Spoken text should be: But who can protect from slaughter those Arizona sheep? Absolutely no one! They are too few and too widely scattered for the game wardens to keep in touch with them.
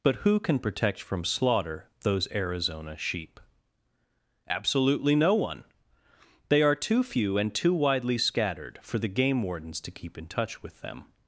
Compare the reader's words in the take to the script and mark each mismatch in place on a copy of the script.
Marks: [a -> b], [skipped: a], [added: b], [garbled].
But who can protect from slaughter those Arizona sheep? Absolutely no one! They are too few and too widely scattered for the game wardens to keep in touch with them.